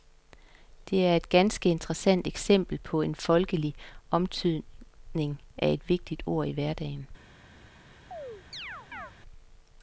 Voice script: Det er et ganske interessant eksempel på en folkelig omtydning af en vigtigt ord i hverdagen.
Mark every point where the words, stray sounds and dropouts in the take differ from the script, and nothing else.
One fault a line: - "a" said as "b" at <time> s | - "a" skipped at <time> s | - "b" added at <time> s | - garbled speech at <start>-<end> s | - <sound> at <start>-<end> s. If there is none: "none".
- "en" said as "et" at 5.7 s
- chirp at 8.1-9.1 s